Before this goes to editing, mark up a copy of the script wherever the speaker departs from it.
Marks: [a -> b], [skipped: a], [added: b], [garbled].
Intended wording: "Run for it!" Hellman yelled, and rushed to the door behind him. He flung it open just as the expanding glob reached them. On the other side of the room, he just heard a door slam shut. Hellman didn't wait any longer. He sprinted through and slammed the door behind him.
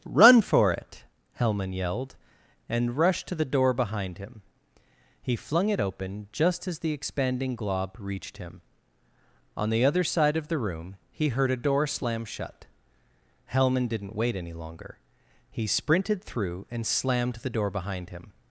"Run for it!" Hellman yelled, and rushed to the door behind him. He flung it open just as the expanding glob reached [them. -> him] On the other side of the room, he [skipped: just] heard a door slam shut. Hellman didn't wait any longer. He sprinted through and slammed the door behind him.